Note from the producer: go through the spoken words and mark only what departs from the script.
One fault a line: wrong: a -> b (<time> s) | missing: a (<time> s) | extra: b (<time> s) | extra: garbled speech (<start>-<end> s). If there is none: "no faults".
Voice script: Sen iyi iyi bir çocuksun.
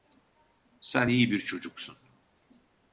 missing: iyi (1.3 s)